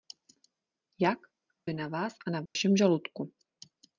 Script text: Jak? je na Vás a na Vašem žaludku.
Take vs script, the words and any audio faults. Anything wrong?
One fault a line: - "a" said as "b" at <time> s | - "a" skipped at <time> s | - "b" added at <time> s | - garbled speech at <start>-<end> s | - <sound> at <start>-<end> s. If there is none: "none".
- dropout at 2.5-2.6 s